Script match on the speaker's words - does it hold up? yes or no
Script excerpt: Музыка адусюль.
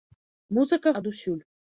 yes